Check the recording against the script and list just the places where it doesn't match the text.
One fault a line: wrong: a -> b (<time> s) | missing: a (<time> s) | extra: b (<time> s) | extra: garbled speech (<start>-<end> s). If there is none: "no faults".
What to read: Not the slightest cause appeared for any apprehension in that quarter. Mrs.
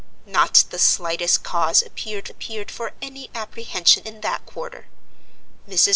extra: appeared (2.3 s)